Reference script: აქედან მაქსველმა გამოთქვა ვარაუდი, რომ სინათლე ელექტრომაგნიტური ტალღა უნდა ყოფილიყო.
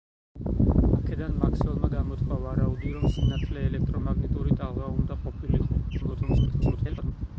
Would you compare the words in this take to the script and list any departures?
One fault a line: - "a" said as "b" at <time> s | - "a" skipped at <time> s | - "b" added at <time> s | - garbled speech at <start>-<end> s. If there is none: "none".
- garbled speech at 5.9-7.1 s